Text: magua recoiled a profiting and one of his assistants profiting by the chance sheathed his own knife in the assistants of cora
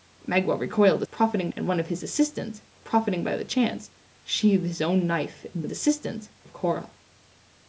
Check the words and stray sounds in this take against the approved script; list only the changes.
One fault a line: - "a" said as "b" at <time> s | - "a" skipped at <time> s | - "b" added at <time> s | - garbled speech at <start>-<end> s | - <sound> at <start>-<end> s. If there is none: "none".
none